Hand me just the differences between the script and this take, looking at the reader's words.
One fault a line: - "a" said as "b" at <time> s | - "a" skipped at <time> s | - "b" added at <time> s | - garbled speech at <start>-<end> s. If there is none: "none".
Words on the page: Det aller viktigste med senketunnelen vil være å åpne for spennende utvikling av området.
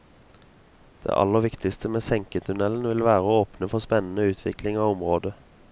none